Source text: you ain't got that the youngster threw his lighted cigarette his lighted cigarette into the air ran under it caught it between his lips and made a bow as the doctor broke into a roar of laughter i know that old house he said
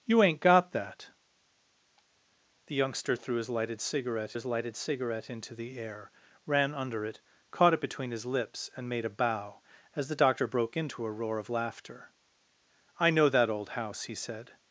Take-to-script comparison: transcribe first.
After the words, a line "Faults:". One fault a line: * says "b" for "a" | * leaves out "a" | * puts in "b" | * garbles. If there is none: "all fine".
you ain't got that the youngster threw his lighted cigarette his lighted cigarette into the air ran under it caught it between his lips and made a bow as the doctor broke into a roar of laughter i know that old house he said
Faults:
all fine